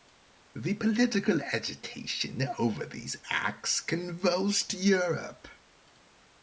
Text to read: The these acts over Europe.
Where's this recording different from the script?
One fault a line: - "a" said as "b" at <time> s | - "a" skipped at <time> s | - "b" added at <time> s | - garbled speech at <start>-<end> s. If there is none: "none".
- "political agitation over" added at 0.7 s
- "over" said as "convulsed" at 3.8 s